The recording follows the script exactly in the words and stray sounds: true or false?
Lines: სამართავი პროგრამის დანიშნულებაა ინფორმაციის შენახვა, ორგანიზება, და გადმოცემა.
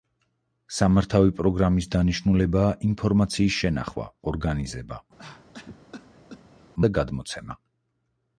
false